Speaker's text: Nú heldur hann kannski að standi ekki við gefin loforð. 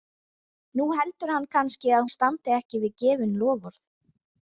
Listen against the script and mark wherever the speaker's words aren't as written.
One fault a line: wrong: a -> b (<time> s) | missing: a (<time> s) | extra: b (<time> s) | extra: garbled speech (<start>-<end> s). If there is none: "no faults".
no faults